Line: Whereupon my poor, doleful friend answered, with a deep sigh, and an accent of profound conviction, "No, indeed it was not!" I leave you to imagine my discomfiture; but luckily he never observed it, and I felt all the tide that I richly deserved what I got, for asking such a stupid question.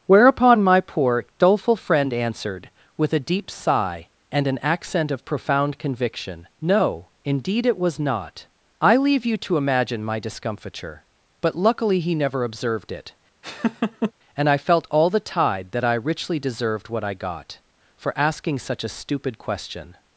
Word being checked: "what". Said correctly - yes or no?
yes